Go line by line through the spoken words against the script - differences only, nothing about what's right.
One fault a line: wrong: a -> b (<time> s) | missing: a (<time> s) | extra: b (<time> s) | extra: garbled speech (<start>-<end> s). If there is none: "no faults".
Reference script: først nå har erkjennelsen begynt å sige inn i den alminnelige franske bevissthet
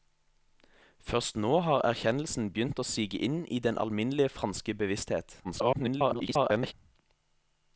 extra: garbled speech (5.4-6.7 s)